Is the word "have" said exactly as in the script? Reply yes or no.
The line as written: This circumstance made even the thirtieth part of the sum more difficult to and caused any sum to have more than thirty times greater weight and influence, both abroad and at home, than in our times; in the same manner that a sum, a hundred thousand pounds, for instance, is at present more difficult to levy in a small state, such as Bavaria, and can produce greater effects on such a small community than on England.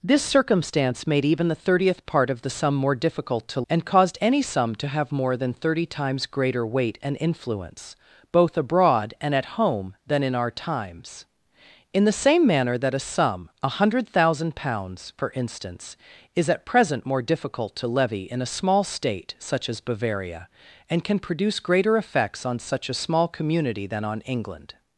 yes